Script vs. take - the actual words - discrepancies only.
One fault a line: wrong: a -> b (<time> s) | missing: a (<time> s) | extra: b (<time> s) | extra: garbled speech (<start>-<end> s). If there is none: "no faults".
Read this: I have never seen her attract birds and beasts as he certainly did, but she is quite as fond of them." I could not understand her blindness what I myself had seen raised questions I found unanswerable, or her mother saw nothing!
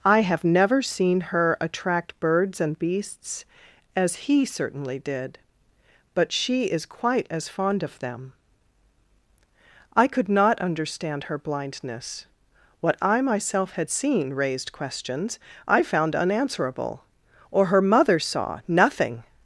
no faults